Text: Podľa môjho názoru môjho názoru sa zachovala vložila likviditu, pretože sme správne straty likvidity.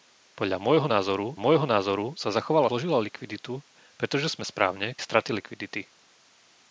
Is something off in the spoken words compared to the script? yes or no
no